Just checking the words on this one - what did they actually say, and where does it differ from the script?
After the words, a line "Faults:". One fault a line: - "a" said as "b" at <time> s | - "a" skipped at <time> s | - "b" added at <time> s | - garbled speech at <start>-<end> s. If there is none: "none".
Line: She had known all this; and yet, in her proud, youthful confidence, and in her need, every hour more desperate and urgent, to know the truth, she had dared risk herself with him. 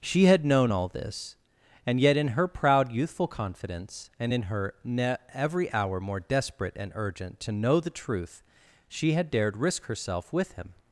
She had known all this; and yet, in her proud, youthful confidence, and in her ne, every hour more desperate and urgent, to know the truth, she had dared risk herself with him.
Faults:
- "need" said as "ne" at 4.8 s